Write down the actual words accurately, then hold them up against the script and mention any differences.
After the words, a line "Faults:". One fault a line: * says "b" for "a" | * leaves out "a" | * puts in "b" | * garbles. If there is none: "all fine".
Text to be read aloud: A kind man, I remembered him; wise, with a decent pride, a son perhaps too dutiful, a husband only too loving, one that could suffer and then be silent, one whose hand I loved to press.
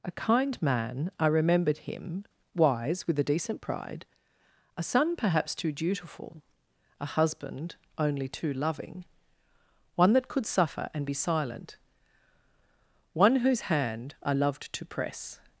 A kind man, I remembered him; wise, with a decent pride, a son perhaps too dutiful, a husband only too loving, one that could suffer and be silent, one whose hand I loved to press.
Faults:
* leaves out "then"